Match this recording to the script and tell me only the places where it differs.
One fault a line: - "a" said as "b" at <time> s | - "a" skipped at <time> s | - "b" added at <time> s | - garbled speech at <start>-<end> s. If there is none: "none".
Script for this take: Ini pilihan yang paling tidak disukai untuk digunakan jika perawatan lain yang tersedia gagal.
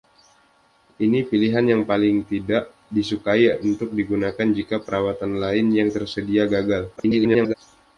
- garbled speech at 7.0-7.5 s